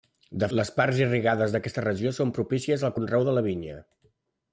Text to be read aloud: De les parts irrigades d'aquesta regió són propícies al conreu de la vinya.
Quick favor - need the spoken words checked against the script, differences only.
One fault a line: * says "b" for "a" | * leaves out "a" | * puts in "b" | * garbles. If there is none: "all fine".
all fine